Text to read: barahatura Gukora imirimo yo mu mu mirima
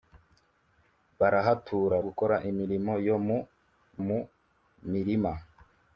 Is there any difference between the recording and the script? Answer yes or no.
no